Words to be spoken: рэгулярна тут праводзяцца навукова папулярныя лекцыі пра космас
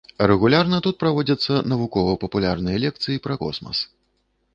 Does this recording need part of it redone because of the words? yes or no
no